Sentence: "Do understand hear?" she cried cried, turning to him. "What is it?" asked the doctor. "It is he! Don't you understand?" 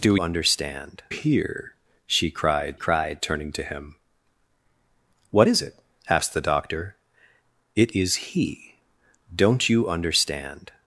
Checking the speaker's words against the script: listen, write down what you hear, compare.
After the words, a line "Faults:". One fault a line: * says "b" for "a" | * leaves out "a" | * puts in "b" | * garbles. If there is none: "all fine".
"Do understand hear?" she cried cried, turning to him. "What is it?" asked the doctor. "It is he! Don't you understand?"
Faults:
all fine